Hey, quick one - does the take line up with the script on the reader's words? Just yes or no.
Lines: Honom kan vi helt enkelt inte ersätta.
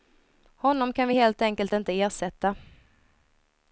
yes